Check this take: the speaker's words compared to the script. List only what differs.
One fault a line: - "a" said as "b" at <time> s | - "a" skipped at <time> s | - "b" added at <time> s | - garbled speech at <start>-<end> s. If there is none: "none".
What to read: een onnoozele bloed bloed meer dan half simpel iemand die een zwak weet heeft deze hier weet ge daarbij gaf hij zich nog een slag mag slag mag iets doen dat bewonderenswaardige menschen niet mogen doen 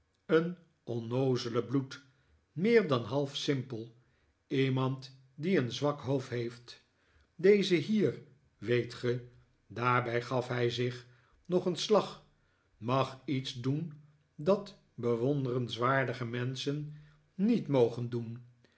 - "bloed" skipped at 2.0 s
- "weet" said as "hoofd" at 6.0 s
- "slag mag" skipped at 13.2 s